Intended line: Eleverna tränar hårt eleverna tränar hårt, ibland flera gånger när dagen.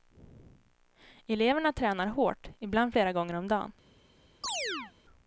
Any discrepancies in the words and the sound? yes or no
yes